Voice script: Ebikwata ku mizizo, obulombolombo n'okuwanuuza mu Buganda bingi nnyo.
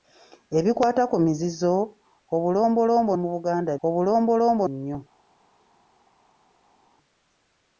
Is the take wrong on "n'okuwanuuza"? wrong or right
wrong